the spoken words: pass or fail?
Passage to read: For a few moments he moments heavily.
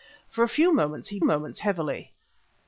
pass